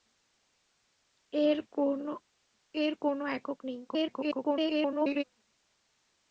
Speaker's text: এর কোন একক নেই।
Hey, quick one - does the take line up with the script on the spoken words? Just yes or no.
no